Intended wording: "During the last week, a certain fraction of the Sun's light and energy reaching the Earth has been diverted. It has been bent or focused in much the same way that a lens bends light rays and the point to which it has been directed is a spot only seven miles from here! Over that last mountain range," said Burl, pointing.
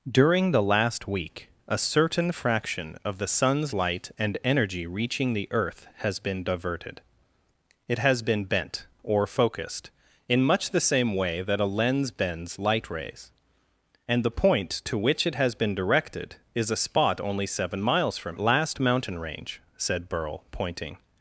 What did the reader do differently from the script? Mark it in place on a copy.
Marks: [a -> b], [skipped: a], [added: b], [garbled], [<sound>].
"During the last week, a certain fraction of the Sun's light and energy reaching the Earth has been diverted. It has been bent or focused in much the same way that a lens bends light rays and the point to which it has been directed is a spot only seven miles from [skipped: here! Over that] last mountain range," said Burl, pointing.